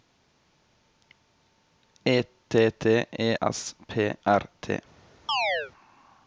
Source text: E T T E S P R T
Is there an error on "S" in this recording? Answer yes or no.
no